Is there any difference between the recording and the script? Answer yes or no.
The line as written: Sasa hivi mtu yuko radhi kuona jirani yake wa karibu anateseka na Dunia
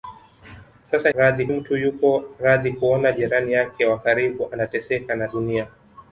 yes